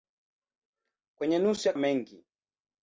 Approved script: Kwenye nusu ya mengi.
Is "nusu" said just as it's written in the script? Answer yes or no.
yes